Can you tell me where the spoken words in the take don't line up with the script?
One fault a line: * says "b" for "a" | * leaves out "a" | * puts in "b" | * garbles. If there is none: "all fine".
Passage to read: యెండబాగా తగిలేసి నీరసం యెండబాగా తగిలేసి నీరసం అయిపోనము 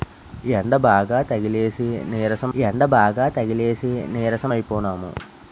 all fine